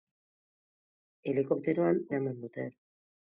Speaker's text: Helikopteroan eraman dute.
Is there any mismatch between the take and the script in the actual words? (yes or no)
no